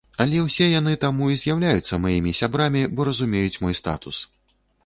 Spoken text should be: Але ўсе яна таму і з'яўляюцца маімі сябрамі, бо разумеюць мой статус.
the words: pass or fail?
fail